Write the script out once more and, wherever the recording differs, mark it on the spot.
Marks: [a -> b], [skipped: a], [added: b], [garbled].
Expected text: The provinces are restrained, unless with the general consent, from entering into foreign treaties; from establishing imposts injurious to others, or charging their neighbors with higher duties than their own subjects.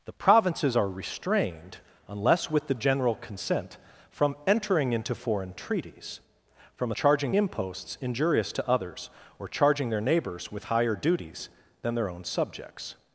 The provinces are restrained, unless with the general consent, from entering into foreign treaties; from [establishing -> charging] imposts injurious to others, or charging their neighbors with higher duties than their own subjects.